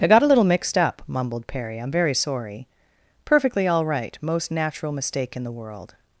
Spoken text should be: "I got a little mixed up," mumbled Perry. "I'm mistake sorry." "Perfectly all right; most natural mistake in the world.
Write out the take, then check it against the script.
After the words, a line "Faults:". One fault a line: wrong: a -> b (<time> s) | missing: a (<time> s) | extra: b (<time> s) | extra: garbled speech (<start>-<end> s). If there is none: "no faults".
"I got a little mixed up," mumbled Perry. "I'm very sorry." "Perfectly all right; most natural mistake in the world.
Faults:
wrong: mistake -> very (1.9 s)